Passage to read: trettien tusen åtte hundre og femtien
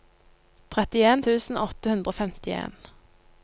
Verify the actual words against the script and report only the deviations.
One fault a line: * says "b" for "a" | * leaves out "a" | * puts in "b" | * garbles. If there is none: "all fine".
all fine